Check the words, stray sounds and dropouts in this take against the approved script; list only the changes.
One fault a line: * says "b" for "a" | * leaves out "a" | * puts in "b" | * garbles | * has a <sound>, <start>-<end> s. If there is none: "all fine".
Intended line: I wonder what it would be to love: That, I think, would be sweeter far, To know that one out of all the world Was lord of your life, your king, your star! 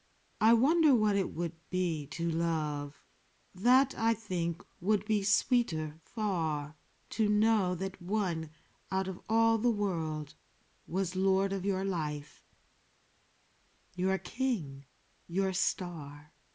all fine